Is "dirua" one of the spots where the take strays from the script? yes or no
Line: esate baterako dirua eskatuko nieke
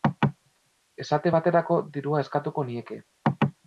no